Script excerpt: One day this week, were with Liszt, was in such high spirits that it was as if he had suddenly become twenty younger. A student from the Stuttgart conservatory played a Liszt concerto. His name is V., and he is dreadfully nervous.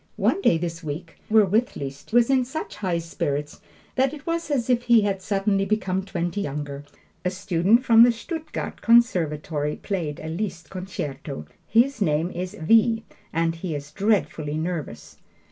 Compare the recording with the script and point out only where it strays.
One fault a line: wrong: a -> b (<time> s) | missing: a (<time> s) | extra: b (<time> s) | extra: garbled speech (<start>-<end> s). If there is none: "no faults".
no faults